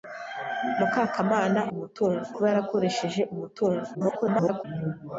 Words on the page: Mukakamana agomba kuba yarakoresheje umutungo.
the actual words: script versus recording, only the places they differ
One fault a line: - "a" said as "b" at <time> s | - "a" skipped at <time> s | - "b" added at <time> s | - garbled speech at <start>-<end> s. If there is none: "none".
- "agomba" said as "umutungo" at 1.7 s
- garbled speech at 3.9-4.6 s